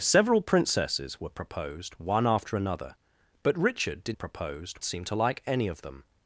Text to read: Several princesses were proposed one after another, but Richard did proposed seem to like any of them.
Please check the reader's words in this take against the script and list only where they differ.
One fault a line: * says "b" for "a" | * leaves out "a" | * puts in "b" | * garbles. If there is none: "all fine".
all fine